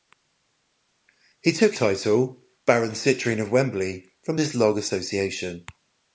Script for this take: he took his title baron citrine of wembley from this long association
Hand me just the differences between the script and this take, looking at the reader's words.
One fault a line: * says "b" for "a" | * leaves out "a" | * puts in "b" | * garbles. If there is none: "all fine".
* leaves out "his"